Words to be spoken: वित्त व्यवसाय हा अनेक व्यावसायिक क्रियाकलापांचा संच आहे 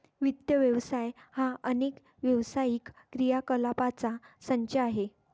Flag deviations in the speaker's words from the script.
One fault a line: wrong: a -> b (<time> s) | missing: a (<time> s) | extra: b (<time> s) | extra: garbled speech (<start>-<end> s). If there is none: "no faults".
no faults